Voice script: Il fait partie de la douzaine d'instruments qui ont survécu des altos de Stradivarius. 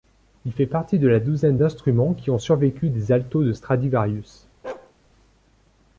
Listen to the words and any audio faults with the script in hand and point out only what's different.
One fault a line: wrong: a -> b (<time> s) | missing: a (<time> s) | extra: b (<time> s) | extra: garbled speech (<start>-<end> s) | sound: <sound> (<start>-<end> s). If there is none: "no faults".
sound: bark (4.6-4.9 s)